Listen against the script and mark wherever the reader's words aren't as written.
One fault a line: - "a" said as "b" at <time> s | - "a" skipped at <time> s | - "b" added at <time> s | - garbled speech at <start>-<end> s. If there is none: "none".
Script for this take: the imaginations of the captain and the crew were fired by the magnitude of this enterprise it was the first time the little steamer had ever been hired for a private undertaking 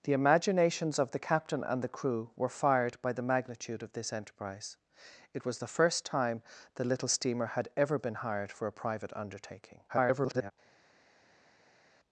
- garbled speech at 9.9-10.5 s